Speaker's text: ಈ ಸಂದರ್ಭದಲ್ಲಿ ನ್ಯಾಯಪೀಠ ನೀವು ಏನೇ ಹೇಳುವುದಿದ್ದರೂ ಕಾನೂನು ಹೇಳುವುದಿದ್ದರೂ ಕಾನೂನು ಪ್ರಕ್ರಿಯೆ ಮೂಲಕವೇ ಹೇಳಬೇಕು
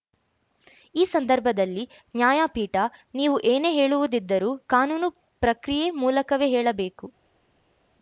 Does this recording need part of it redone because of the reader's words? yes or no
yes